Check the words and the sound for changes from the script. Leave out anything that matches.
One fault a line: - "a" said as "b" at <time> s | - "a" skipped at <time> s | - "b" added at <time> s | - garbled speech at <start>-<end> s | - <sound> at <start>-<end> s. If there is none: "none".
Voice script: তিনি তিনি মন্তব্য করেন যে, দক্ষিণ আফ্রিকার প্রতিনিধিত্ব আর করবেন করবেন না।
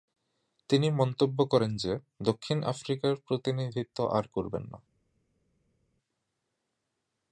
- "তিনি" skipped at 0.9 s
- "করবেন" skipped at 4.6 s